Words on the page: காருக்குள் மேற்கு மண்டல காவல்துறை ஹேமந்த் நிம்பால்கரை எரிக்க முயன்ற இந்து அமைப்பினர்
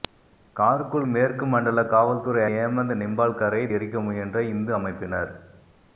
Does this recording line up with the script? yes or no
yes